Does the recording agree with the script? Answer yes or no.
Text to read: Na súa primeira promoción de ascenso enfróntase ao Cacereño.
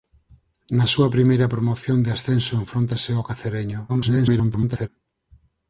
no